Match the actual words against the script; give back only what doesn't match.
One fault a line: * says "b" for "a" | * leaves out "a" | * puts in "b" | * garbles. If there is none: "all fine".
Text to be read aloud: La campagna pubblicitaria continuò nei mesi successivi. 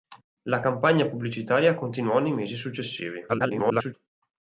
* garbles